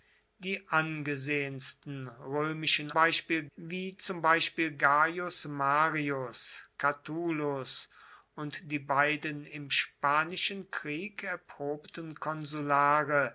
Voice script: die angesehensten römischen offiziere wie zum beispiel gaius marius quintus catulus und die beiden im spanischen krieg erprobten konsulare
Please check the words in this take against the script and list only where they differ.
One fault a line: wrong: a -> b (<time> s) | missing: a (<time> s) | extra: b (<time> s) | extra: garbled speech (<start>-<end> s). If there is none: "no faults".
wrong: offiziere -> beispiel (2.9 s)
missing: quintus (6.6 s)